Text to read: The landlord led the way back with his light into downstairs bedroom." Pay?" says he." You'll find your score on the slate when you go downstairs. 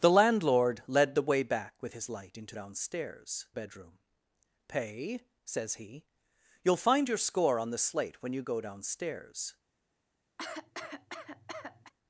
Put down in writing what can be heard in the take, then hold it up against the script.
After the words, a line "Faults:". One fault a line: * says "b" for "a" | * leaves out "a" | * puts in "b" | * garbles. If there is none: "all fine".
The landlord led the way back with his light into downstairs bedroom." Pay?" says he." You'll find your score on the slate when you go downstairs.
Faults:
all fine